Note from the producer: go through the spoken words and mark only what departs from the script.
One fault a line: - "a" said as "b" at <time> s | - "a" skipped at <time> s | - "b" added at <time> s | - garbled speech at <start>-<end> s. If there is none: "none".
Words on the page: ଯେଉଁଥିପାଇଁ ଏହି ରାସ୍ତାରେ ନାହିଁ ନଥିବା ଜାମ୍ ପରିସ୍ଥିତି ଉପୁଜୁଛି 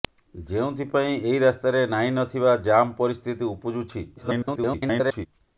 - garbled speech at 4.2-5.3 s